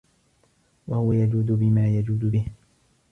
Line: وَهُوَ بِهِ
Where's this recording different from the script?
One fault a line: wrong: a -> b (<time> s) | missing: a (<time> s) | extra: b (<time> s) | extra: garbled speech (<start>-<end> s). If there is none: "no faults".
extra: يَجُودُ بِمَا يَجُودُ (1.1 s)